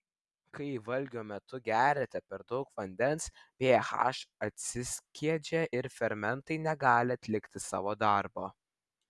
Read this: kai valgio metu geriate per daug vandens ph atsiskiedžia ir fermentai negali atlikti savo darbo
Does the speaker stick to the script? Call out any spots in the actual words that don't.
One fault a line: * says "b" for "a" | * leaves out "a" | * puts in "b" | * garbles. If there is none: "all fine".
all fine